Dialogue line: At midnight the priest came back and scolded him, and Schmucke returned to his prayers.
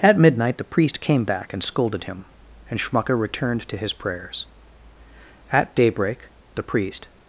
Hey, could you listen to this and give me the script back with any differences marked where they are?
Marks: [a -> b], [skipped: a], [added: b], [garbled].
At midnight the priest came back and scolded him, and Schmucke returned to his prayers. [added: At daybreak the priest]